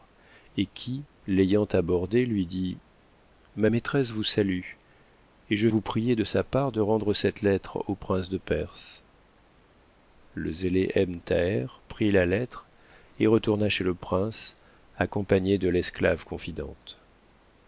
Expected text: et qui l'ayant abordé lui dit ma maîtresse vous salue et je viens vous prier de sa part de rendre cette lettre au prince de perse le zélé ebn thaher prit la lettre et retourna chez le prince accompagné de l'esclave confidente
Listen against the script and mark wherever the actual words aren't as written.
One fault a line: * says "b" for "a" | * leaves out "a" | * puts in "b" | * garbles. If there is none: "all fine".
* leaves out "viens"